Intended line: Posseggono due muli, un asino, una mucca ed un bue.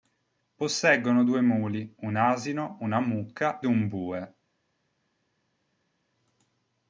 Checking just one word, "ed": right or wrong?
wrong